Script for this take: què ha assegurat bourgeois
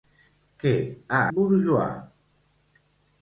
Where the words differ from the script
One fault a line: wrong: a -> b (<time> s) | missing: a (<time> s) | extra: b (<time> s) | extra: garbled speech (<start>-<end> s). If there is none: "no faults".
missing: assegurat (1.2 s)